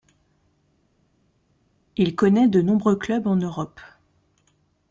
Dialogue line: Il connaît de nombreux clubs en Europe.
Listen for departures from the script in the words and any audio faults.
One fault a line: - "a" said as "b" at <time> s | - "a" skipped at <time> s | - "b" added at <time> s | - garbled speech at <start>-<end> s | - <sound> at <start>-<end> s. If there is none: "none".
none